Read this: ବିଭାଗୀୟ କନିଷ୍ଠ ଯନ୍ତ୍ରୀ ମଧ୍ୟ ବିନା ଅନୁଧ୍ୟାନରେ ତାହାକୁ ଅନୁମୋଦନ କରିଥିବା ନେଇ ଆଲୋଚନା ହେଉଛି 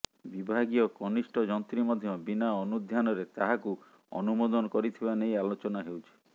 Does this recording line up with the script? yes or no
yes